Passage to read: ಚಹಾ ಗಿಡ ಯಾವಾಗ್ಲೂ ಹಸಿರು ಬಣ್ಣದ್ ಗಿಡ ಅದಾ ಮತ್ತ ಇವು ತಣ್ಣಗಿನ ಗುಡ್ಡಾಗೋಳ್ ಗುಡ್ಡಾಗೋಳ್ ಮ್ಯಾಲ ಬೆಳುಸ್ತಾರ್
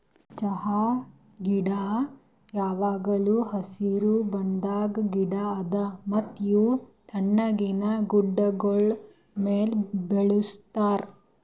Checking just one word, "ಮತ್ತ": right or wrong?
right